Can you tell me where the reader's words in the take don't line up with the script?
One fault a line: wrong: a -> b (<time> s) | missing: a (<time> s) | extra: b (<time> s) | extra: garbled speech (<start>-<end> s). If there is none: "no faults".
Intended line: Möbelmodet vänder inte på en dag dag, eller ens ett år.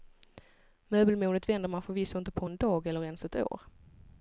extra: man förvisso (1.7 s)
missing: dag (2.9 s)